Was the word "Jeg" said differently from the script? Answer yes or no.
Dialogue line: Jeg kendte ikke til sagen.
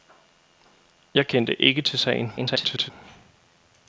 no